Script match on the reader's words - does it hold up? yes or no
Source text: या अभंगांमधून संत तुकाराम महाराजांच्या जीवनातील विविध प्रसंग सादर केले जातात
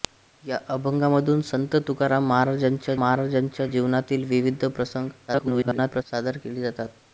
no